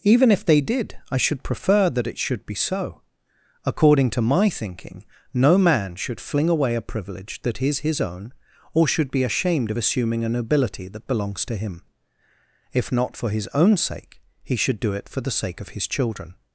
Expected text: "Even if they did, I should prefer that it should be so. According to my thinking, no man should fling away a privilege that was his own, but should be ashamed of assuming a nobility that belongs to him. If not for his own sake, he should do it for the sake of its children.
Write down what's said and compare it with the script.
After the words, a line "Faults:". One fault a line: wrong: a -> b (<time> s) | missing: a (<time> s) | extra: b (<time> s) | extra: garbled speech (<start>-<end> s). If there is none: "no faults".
"Even if they did, I should prefer that it should be so. According to my thinking, no man should fling away a privilege that is his own, or should be ashamed of assuming a nobility that belongs to him. If not for his own sake, he should do it for the sake of his children.
Faults:
wrong: was -> is (7.6 s)
wrong: but -> or (8.7 s)
wrong: its -> his (15.7 s)